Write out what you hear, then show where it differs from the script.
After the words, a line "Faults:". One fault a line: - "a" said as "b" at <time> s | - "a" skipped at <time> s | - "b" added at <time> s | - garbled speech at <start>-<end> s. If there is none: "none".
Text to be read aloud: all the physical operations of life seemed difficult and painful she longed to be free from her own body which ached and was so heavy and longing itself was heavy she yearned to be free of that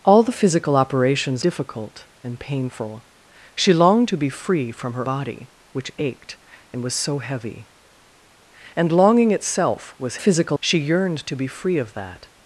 all the physical operations difficult and painful she longed to be free from her body which ached and was so heavy and longing itself was physical she yearned to be free of that
Faults:
- "of life seemed" skipped at 1.4 s
- "own" skipped at 5.1 s
- "heavy" said as "physical" at 10.1 s